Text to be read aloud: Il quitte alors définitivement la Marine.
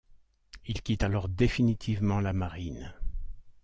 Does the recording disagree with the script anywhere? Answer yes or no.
no